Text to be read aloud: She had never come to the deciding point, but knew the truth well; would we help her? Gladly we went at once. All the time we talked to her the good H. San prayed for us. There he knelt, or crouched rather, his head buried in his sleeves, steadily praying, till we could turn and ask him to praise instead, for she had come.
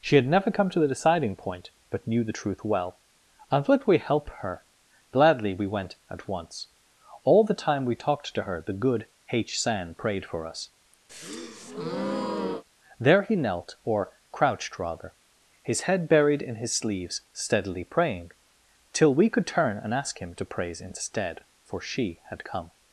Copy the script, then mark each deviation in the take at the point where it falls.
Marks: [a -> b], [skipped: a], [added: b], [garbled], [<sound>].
She had never come to the deciding point, but knew the truth well; [added: and] would we help her? Gladly we went at once. All the time we talked to her the good H. San prayed for us. [breath] There he knelt, or crouched rather, his head buried in his sleeves, steadily praying, till we could turn and ask him to praise instead, for she had come.